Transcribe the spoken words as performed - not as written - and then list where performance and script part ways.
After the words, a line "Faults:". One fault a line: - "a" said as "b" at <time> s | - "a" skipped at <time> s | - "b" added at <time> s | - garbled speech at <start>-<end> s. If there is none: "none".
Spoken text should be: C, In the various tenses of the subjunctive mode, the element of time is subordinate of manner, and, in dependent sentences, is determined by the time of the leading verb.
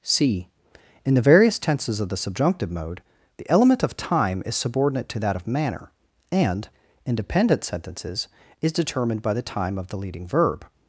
C, In the various tenses of the subjunctive mode, the element of time is subordinate to that of manner, and, in dependent sentences, is determined by the time of the leading verb.
Faults:
- "to that" added at 5.1 s